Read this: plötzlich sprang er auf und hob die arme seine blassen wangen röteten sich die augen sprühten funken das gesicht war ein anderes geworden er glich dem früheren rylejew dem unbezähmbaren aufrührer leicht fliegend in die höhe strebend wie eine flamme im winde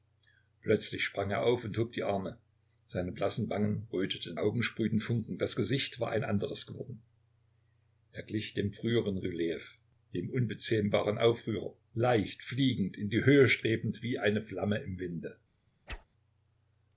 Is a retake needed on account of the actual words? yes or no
yes